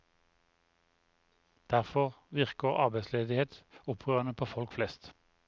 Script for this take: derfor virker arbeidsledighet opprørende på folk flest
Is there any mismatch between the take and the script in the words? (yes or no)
no